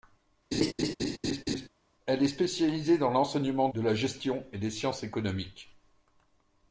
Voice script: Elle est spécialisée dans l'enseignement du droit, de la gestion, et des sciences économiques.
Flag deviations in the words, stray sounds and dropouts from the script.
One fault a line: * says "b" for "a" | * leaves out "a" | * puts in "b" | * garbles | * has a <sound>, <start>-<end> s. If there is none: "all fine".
* has a laugh, 0.5-1.7 s
* leaves out "du droit"